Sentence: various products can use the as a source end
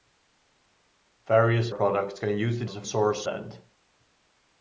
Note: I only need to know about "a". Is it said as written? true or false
true